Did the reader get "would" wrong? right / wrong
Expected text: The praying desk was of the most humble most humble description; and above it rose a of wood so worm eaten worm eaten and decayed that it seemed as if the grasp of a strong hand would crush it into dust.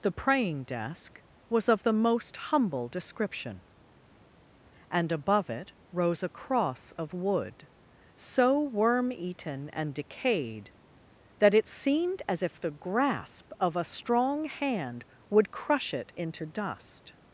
right